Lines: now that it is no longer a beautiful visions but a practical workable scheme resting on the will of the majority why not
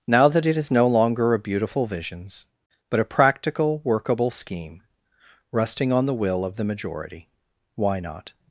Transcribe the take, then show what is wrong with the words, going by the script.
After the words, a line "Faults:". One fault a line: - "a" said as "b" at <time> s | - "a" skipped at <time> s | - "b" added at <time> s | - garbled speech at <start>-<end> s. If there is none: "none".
now that it is no longer a beautiful visions but a practical workable scheme resting on the will of the majority why not
Faults:
none